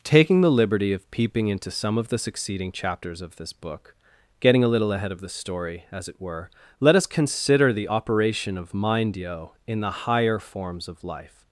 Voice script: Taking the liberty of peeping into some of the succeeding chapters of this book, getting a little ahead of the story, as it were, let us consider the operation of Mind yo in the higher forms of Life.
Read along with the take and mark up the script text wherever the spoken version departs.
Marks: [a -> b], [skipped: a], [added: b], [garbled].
Taking the liberty of peeping into some of the succeeding chapters of this book, getting a little ahead of the story, as it were, let us consider the operation of Mind yo in the higher forms of Life.